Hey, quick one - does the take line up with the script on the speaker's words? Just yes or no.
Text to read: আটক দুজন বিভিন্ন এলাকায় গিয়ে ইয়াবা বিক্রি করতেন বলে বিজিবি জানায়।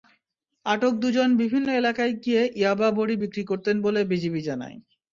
no